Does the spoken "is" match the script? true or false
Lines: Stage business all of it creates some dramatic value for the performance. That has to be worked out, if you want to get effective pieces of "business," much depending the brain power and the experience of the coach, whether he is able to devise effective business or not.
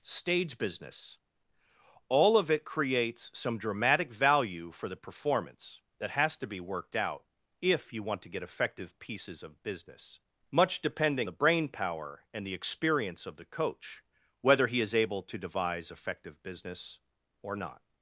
true